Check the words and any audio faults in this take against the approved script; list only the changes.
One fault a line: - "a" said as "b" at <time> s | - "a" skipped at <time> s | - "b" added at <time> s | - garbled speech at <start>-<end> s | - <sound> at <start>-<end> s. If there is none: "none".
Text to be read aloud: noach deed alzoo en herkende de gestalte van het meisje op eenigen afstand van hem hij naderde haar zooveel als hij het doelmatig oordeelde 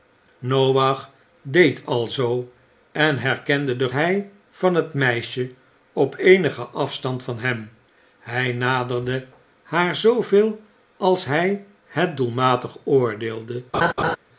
- "gestalte" said as "hij" at 3.9 s
- laugh at 13.7-14.2 s